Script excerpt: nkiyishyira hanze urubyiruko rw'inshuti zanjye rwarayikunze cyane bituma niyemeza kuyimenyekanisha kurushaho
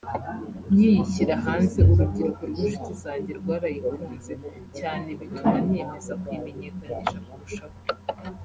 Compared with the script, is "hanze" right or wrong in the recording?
right